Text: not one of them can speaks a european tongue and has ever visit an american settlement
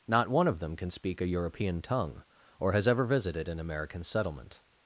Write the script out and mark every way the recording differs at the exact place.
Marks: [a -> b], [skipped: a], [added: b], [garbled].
not one of them can [speaks -> speak] a european tongue [and -> or] has ever [visit -> visited] an american settlement